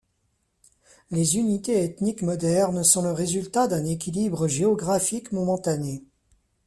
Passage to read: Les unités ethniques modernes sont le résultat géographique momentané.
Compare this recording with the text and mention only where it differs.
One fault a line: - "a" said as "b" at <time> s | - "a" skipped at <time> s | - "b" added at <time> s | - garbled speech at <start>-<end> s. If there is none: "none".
- "d'un équilibre" added at 3.7 s